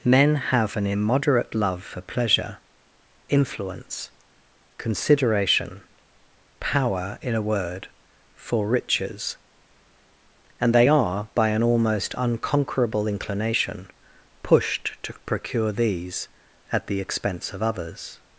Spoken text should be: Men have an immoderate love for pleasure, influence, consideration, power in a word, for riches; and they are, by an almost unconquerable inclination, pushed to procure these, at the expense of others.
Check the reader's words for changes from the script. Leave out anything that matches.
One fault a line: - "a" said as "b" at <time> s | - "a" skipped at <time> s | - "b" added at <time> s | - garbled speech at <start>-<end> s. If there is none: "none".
none